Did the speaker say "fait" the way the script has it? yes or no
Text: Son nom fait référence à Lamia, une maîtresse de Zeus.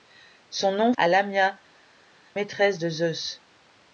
no